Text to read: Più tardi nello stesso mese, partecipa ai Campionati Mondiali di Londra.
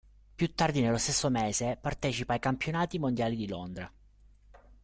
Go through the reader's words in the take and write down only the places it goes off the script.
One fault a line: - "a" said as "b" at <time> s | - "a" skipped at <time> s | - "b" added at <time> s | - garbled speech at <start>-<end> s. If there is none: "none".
none